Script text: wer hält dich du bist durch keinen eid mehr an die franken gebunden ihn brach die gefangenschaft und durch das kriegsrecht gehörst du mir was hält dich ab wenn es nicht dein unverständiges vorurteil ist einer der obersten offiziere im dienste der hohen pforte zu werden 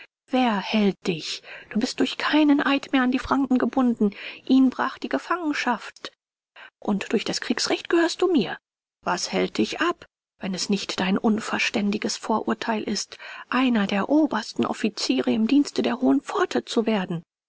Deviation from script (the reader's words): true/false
false